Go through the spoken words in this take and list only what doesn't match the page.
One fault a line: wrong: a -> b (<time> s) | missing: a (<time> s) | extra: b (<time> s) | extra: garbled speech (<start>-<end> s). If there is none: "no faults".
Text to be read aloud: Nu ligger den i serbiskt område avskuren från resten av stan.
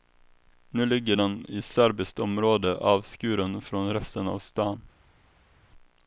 no faults